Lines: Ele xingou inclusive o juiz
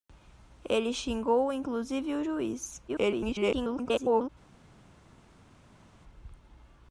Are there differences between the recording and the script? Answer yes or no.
yes